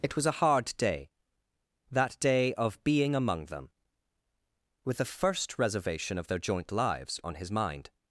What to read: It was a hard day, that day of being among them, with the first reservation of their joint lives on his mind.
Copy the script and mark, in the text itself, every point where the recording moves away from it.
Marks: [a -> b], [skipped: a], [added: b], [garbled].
It was a hard day, that day of being among them, with the first reservation of their joint lives on his mind.